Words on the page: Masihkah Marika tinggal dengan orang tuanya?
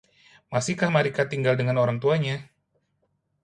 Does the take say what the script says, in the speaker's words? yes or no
yes